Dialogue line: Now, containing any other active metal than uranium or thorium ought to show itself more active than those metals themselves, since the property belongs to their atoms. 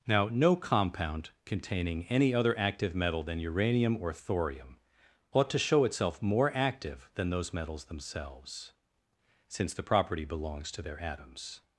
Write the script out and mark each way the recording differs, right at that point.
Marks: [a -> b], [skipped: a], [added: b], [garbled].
Now, [added: no compound] containing any other active metal than uranium or thorium ought to show itself more active than those metals themselves, since the property belongs to their atoms.